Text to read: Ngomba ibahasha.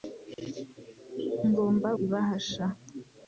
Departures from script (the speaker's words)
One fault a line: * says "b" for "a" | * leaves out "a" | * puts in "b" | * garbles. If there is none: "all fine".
all fine